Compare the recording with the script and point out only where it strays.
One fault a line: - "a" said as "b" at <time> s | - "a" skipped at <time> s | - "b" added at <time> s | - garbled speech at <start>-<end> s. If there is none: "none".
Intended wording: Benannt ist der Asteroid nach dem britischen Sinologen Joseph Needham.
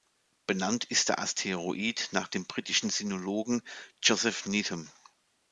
none